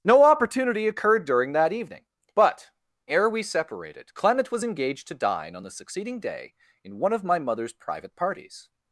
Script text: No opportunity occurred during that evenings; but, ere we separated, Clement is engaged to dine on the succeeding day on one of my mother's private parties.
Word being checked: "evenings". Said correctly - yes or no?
no